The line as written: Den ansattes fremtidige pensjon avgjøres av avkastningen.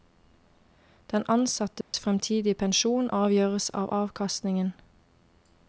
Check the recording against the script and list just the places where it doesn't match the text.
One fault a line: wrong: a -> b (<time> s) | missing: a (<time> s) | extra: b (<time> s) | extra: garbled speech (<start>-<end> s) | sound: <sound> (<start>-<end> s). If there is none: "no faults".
sound: dropout (1.8-1.9 s)